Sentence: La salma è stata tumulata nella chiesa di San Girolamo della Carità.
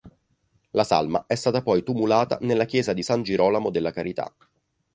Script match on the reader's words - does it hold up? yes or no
no